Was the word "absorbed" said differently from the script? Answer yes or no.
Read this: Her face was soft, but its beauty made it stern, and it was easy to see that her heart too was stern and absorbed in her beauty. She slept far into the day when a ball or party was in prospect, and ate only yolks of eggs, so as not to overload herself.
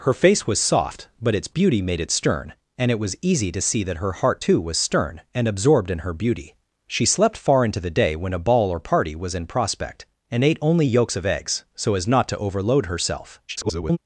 no